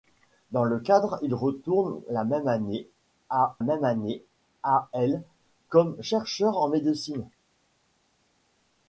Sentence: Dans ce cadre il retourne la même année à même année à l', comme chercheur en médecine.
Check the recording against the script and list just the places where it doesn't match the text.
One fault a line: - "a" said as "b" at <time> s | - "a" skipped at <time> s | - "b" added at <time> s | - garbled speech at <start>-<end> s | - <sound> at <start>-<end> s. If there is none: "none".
none